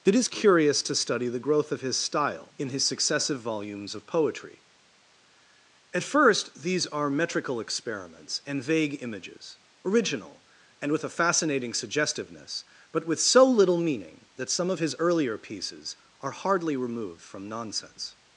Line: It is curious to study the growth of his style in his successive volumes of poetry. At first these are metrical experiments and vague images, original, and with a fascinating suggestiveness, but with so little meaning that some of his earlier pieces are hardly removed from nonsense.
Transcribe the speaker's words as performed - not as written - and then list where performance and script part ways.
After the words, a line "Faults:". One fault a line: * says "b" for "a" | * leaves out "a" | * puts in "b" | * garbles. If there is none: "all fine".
It is curious to study the growth of his style in his successive volumes of poetry. At first these are metrical experiments and vague images, original, and with a fascinating suggestiveness, but with so little meaning that some of his earlier pieces are hardly removed from nonsense.
Faults:
all fine